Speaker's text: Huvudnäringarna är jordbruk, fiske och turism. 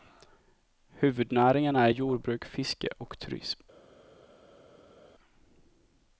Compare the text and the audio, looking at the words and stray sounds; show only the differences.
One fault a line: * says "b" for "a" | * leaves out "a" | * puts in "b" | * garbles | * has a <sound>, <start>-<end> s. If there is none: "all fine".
all fine